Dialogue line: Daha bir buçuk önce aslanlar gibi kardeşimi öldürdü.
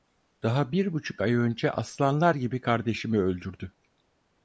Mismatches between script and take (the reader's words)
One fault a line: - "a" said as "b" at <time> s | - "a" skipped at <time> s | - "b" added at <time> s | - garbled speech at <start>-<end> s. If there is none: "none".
- "ay" added at 1.2 s